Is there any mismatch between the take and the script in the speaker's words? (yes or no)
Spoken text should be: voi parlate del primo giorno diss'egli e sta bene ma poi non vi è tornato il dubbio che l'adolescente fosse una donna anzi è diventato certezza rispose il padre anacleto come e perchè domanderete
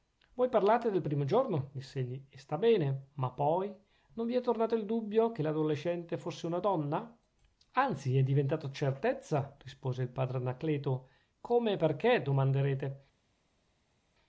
no